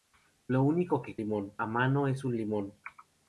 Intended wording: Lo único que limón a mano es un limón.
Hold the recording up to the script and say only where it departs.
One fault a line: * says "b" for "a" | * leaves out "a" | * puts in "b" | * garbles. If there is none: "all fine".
all fine